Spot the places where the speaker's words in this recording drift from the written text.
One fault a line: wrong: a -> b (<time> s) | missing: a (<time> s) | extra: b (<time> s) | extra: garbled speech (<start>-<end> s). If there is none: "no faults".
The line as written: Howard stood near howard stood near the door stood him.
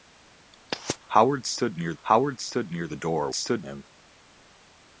no faults